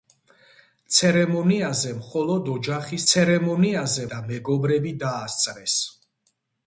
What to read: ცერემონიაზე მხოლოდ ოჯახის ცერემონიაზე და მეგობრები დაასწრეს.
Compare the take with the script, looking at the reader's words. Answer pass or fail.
pass